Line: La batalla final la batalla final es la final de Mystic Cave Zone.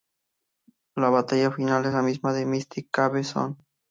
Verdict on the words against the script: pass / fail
fail